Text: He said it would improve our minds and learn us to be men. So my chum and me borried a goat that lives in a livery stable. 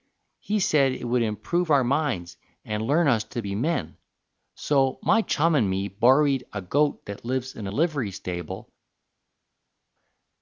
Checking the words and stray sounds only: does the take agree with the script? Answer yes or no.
yes